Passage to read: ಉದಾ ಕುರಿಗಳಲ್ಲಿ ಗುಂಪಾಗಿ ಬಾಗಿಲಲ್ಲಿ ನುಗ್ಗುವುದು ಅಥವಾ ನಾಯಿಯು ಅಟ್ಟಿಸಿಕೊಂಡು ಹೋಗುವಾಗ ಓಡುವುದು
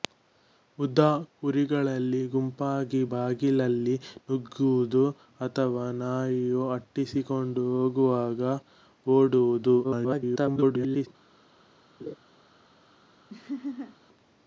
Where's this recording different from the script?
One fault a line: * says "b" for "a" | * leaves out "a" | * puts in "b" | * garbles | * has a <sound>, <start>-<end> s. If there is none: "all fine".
* garbles
* has a laugh, 12.0-12.2 s
* has a laugh, 13.3-14.0 s